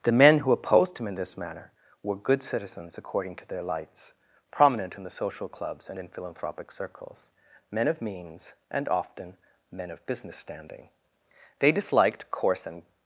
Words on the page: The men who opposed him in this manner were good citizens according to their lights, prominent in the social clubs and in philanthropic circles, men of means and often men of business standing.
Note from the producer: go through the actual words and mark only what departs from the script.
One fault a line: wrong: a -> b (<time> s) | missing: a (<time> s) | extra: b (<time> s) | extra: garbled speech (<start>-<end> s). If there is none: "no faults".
extra: They disliked coarse and (11.6 s)